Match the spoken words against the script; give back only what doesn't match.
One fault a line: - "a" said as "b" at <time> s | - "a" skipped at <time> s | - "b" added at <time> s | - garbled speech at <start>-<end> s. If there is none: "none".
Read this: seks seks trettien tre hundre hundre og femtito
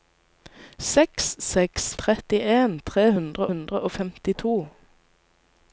none